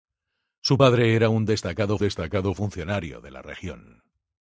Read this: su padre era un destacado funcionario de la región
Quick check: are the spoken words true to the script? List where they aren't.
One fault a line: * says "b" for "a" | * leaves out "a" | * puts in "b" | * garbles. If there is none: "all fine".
* puts in "destacado"